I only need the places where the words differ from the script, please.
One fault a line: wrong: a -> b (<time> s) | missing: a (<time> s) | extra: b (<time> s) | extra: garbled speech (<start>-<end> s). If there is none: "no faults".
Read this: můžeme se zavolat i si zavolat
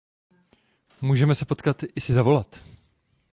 wrong: zavolat -> potkat (1.4 s)